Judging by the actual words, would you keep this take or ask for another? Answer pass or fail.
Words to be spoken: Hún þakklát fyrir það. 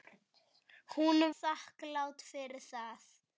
pass